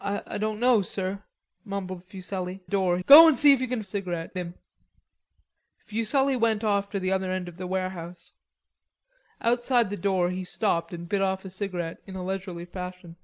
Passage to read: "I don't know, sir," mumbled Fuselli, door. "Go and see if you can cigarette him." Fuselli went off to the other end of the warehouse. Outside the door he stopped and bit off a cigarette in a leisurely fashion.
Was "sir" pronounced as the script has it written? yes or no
yes